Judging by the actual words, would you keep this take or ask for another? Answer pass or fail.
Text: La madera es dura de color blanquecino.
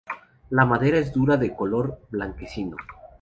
pass